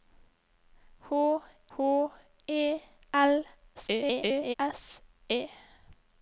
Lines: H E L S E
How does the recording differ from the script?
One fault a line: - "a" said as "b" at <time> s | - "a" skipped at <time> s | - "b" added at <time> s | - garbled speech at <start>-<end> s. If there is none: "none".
- "h" added at 1.8 s
- garbled speech at 3.7-4.5 s